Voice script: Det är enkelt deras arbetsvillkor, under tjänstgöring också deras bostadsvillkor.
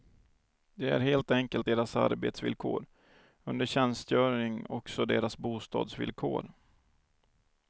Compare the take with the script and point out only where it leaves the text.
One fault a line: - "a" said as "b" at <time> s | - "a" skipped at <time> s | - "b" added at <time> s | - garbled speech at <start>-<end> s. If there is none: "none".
- "helt" added at 1.0 s